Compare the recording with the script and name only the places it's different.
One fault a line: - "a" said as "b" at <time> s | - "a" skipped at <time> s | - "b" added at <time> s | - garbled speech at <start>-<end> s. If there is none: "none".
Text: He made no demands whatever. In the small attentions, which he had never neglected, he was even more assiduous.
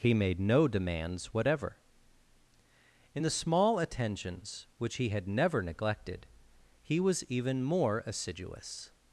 none